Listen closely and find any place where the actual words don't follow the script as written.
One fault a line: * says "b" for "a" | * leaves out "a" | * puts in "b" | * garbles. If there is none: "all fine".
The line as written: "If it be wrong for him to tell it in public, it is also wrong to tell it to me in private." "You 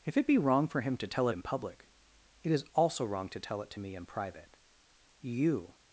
all fine